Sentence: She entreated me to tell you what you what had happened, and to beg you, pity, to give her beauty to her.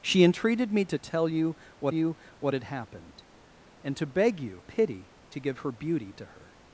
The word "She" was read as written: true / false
true